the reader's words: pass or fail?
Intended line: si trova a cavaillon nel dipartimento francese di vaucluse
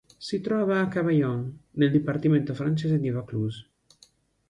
pass